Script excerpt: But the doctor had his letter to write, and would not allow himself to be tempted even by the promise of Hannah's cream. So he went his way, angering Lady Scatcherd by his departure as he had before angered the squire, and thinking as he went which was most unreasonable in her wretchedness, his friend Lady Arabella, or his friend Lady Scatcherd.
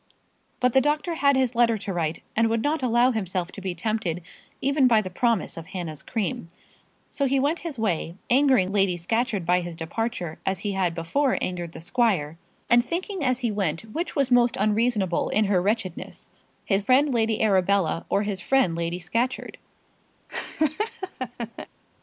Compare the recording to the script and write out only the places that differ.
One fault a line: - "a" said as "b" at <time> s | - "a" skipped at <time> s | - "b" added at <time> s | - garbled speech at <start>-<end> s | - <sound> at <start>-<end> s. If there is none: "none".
- laugh at 20.3-21.7 s